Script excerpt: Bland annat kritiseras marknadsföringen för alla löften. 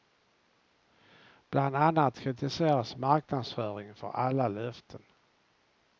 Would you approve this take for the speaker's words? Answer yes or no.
yes